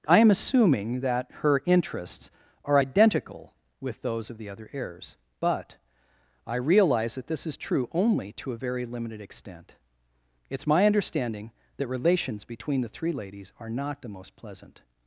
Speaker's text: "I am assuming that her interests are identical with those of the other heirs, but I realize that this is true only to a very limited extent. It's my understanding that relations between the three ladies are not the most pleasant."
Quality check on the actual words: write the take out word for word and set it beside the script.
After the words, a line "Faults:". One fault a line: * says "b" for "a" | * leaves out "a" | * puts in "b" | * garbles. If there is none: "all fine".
"I am assuming that her interests are identical with those of the other heirs, but I realize that this is true only to a very limited extent. It's my understanding that relations between the three ladies are not the most pleasant."
Faults:
all fine